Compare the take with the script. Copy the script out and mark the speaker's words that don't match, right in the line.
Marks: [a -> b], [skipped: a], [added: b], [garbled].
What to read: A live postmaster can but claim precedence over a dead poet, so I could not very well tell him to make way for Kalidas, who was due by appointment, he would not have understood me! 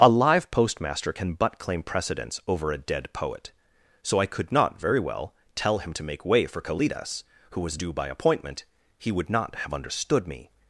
A live postmaster can but claim precedence over a dead poet, so I could not very well tell him to make way for Kalidas, who was due by appointment, he would not have understood me!